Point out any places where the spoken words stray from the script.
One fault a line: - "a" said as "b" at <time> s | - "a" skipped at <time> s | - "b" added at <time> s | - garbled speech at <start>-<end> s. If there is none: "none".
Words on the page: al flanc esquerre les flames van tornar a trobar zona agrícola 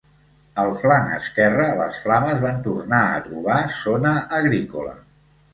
none